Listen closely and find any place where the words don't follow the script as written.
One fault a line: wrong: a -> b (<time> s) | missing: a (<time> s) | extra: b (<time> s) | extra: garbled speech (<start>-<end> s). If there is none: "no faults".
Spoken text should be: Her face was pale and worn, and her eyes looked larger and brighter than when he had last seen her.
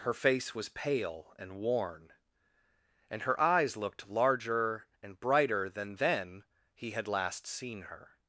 wrong: when -> then (6.0 s)